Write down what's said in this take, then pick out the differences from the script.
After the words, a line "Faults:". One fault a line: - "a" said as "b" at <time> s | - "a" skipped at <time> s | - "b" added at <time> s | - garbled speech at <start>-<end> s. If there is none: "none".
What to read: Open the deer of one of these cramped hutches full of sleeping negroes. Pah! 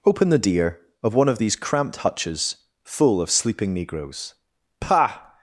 Open the deer of one of these cramped hutches full of sleeping negroes. Pah!
Faults:
none